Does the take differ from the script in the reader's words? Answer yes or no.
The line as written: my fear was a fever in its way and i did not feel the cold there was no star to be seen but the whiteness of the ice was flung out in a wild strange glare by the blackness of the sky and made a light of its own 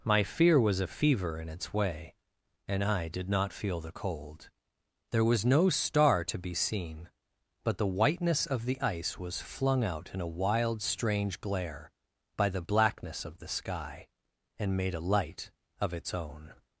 no